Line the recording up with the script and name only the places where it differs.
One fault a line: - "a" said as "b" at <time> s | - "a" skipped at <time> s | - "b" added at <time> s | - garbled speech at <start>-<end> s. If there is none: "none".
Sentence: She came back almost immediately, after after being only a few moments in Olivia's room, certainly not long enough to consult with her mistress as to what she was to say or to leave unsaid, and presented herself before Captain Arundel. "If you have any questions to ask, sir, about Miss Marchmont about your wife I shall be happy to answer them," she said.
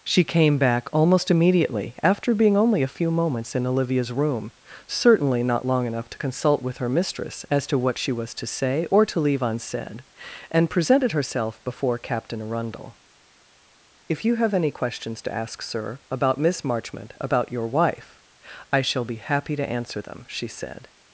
- "after" skipped at 2.3 s